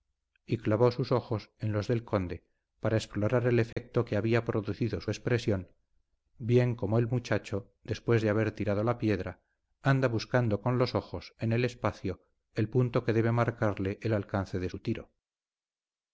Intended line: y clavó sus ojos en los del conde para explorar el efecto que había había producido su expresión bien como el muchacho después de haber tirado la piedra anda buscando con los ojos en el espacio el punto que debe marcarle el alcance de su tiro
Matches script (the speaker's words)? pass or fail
fail